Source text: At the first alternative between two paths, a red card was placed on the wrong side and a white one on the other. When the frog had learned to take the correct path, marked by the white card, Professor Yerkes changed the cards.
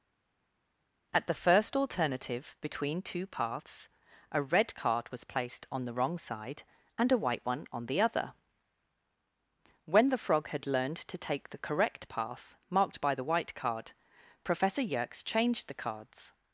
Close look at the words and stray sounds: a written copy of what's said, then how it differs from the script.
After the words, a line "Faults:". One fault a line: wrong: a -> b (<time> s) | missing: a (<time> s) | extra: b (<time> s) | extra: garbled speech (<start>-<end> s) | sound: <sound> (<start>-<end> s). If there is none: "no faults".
At the first alternative between two paths, a red card was placed on the wrong side and a white one on the other. When the frog had learned to take the correct path, marked by the white card, Professor Yerkes changed the cards.
Faults:
no faults